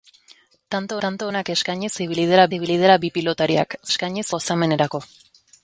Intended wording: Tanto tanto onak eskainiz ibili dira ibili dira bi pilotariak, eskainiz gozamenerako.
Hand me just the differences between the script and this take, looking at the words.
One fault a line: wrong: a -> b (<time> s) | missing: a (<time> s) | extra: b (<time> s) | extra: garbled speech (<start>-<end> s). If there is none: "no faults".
no faults